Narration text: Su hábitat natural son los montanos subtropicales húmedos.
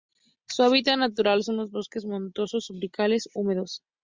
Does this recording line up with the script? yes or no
no